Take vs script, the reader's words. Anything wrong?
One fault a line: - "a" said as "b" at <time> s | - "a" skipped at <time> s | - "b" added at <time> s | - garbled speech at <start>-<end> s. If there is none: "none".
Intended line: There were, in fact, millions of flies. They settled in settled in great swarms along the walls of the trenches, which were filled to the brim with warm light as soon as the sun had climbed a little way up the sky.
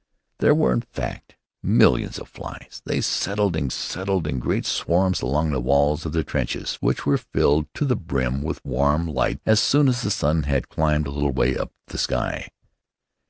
none